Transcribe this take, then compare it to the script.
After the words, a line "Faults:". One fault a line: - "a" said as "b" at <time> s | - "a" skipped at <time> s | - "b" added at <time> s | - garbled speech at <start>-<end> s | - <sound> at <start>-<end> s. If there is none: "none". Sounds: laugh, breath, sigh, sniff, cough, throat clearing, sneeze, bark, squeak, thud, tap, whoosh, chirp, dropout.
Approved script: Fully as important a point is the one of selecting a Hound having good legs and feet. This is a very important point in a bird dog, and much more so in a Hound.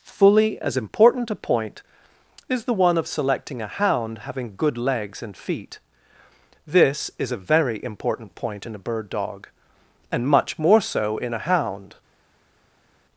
Fully as important a point is the one of selecting a Hound having good legs and feet. This is a very important point in a bird dog, and much more so in a Hound.
Faults:
none